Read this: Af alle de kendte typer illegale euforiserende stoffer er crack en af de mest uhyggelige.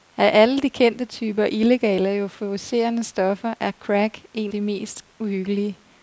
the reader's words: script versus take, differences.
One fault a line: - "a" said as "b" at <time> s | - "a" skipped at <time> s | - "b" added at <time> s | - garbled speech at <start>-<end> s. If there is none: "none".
- "af" skipped at 4.5 s